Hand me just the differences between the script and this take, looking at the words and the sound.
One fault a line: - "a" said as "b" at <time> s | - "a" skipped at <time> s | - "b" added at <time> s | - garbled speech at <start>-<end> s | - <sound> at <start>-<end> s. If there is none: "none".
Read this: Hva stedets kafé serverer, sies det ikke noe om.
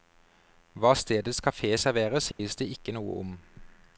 - dropout at 2.3-2.4 s